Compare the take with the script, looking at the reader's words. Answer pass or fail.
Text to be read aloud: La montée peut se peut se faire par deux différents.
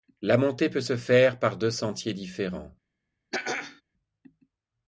fail